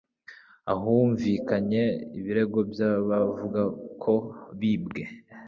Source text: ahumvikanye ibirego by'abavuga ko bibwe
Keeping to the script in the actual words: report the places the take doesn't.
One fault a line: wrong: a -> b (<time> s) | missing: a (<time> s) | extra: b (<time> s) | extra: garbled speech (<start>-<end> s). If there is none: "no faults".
no faults